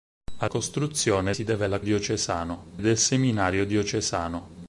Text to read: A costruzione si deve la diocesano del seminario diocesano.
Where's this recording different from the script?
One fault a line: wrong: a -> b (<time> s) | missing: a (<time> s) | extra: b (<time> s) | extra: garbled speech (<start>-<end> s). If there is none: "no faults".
no faults